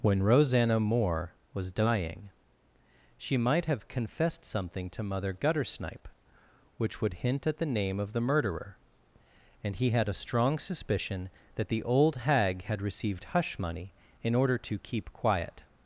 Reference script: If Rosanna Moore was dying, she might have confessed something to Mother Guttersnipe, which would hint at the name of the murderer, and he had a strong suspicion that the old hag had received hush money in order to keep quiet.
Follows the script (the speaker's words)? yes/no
no